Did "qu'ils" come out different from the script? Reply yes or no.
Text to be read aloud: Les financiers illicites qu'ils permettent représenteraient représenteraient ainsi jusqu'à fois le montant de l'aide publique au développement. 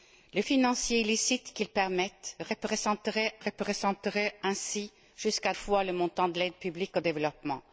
no